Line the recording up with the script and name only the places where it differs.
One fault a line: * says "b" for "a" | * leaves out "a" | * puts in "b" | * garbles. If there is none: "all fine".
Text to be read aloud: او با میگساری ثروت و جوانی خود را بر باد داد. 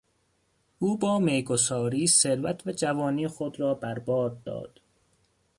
all fine